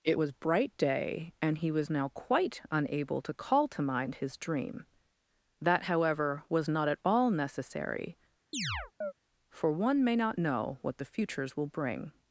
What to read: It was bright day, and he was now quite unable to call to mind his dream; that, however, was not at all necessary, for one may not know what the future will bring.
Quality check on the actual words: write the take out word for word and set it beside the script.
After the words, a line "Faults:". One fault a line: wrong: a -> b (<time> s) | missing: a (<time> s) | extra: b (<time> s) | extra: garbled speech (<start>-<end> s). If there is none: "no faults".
It was bright day, and he was now quite unable to call to mind his dream; that, however, was not at all necessary, for one may not know what the futures will bring.
Faults:
wrong: future -> futures (11.0 s)